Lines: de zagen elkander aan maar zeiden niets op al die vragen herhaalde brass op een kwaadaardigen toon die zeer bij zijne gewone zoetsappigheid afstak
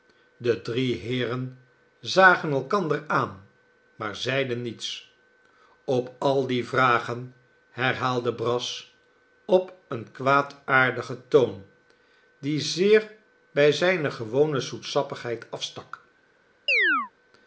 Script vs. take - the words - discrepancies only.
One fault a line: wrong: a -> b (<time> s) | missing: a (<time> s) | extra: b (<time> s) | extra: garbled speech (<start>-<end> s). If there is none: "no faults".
extra: drie heeren (0.6 s)